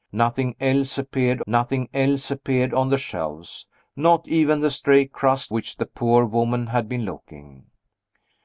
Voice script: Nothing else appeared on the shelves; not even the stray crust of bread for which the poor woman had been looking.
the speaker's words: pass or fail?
fail